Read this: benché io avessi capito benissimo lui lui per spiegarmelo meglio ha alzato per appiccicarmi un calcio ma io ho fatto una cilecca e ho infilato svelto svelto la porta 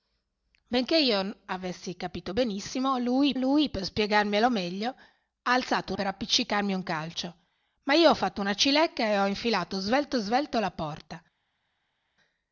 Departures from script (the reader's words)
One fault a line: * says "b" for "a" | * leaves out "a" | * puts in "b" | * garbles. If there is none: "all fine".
all fine